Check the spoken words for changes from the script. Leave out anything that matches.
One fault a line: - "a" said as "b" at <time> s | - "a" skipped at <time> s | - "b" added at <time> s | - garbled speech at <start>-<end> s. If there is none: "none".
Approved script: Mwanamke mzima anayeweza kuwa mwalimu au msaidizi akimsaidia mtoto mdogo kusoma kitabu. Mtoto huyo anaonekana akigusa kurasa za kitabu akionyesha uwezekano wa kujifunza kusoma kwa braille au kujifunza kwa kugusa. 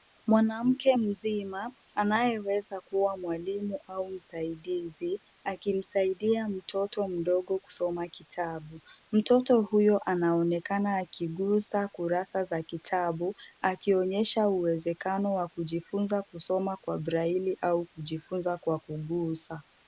none